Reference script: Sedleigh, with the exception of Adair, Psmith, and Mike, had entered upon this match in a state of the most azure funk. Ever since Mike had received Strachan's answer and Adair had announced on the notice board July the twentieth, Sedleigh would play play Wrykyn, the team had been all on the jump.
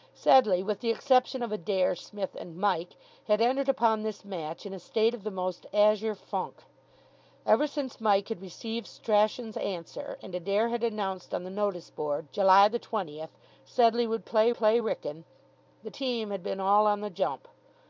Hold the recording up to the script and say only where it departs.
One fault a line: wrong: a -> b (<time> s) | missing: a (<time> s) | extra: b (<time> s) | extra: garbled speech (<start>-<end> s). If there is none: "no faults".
no faults